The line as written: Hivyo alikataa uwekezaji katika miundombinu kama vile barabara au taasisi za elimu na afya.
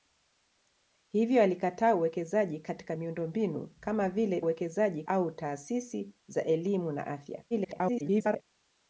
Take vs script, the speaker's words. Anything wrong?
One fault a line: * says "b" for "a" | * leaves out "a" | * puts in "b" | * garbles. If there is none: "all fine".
* says "uwekezaji" for "barabara"
* garbles